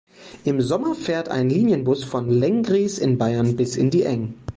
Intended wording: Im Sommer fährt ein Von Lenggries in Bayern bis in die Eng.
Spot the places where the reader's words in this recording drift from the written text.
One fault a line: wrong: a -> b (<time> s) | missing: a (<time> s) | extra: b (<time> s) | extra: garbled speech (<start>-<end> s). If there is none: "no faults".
extra: Linienbus (1.5 s)